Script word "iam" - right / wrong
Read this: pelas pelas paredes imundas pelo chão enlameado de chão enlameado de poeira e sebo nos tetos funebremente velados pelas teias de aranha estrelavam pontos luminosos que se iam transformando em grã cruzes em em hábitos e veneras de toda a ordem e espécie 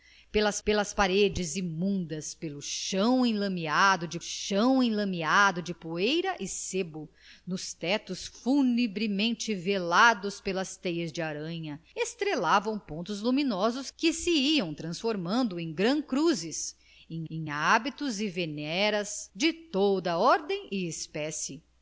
right